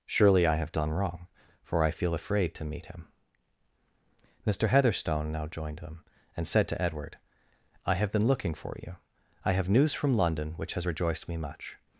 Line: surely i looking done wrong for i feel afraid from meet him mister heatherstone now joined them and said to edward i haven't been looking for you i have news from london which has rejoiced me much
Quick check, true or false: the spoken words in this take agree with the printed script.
false